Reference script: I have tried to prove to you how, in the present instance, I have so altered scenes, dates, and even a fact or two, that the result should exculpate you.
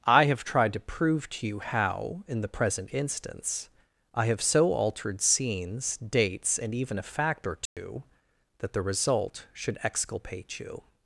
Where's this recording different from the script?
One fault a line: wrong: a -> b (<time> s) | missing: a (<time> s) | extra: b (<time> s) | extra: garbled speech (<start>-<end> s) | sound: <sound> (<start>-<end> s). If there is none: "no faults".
sound: dropout (7.7-7.8 s)